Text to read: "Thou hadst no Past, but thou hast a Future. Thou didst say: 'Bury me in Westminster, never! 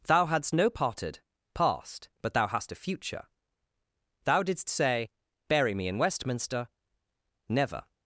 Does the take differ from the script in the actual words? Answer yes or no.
yes